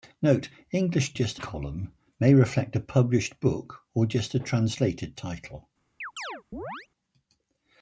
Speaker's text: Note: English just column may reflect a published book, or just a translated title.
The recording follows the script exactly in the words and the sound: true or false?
false